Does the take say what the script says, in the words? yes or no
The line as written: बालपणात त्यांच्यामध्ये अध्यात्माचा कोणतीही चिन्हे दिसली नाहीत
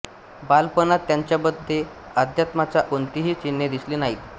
yes